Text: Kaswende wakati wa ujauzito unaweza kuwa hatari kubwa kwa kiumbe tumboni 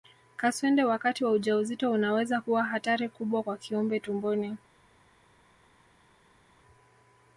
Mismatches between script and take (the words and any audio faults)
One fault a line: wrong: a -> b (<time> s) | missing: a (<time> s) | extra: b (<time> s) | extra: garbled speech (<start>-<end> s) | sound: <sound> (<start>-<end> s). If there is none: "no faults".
no faults